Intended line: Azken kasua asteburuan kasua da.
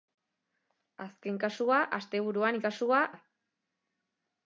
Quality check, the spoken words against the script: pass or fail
pass